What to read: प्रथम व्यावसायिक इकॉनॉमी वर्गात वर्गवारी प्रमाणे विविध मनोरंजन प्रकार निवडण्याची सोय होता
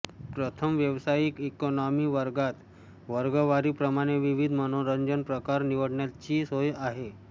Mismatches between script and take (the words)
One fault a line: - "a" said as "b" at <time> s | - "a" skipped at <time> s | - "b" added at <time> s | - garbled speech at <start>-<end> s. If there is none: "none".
- "होता" said as "आहे" at 6.8 s